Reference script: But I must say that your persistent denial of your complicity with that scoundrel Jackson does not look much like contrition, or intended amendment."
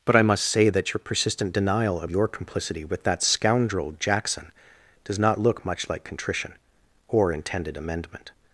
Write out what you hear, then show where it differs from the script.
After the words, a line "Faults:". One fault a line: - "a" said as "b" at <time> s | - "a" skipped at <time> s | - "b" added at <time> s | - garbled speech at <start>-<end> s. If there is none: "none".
But I must say that your persistent denial of your complicity with that scoundrel Jackson does not look much like contrition, or intended amendment."
Faults:
none